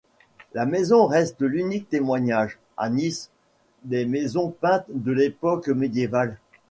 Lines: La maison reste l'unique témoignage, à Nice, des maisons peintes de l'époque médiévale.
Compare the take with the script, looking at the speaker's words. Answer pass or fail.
pass